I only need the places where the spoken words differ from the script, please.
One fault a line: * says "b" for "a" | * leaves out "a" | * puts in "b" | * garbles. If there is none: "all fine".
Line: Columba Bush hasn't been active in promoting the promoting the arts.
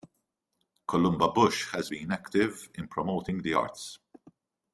* says "has" for "hasn't"
* leaves out "promoting the"